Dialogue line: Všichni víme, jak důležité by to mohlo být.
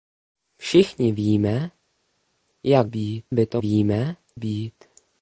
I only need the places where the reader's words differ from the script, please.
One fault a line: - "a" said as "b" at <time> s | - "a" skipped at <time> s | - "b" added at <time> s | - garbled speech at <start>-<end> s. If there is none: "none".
- "důležité" said as "být" at 2.8 s
- "mohlo" said as "víme" at 3.6 s